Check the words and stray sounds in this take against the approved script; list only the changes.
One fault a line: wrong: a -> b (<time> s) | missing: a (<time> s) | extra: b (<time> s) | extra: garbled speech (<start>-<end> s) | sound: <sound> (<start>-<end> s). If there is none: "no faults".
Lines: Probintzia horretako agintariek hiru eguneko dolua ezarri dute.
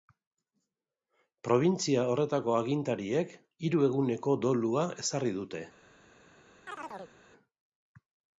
sound: chirp (6.7-7.2 s)